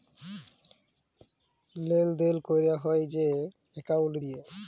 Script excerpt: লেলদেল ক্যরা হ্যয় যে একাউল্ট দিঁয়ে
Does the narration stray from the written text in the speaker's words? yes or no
no